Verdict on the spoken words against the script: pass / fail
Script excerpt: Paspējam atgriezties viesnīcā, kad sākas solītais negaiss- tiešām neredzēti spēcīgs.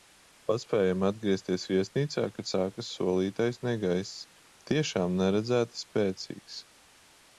pass